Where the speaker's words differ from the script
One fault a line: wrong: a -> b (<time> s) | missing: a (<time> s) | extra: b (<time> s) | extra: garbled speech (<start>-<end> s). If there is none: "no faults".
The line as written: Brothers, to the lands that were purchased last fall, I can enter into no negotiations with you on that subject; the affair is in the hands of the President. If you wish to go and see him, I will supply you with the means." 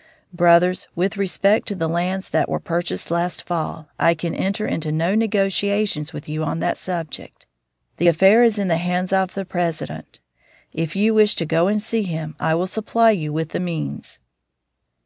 extra: with respect (0.9 s)